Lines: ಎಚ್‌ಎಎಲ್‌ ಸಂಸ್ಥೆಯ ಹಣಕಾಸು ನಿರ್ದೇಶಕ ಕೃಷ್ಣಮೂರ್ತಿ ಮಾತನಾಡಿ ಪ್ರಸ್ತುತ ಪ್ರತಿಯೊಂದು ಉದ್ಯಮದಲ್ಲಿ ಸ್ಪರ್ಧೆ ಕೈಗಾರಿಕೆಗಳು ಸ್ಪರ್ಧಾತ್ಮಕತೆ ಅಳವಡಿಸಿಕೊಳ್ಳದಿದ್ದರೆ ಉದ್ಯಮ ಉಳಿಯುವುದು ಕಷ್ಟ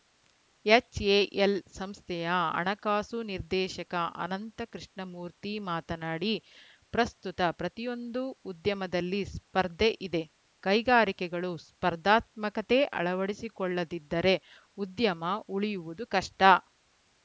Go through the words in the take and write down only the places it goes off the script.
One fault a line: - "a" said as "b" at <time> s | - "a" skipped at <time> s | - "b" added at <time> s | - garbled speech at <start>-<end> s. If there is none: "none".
- "ಅನಂತ" added at 4.2 s
- "ಇದೆ" added at 10.0 s